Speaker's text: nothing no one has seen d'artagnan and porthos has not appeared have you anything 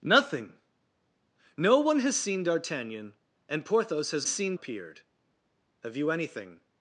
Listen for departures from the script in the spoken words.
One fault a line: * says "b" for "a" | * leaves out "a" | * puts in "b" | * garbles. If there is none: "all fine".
* says "seen" for "not"